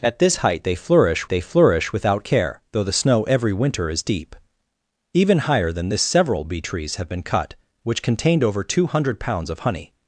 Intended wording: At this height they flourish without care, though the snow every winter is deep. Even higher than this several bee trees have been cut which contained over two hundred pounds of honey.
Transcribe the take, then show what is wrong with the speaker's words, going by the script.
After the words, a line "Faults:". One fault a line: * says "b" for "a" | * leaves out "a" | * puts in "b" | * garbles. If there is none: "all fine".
At this height they flourish they flourish without care, though the snow every winter is deep. Even higher than this several bee trees have been cut which contained over two hundred pounds of honey.
Faults:
* puts in "they flourish"